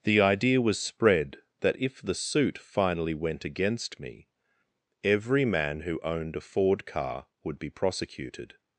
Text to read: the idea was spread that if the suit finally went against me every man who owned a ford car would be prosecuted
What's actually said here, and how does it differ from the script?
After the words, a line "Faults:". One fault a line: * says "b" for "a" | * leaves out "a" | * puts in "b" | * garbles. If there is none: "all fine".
the idea was spread that if the suit finally went against me every man who owned a ford car would be prosecuted
Faults:
all fine